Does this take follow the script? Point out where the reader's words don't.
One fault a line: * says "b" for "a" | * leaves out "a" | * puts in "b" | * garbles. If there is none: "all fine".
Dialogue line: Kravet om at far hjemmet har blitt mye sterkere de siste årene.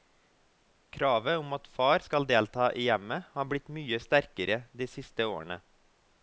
* puts in "skal delta i"